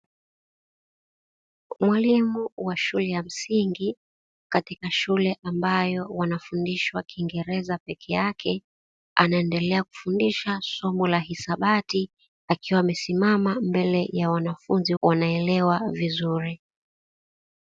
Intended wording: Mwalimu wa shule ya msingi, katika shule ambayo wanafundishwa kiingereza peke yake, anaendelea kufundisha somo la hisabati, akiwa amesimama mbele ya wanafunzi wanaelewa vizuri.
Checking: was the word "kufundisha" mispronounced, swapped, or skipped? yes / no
no